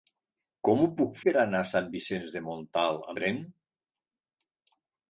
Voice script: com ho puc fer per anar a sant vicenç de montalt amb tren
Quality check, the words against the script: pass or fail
fail